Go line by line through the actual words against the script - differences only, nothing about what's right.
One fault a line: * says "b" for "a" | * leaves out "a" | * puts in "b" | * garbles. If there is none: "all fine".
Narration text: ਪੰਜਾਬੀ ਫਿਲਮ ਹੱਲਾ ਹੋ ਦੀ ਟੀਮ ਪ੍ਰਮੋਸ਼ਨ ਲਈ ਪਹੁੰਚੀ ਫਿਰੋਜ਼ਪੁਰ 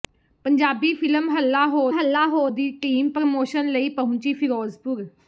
* puts in "ਹੱਲਾ ਹੋ"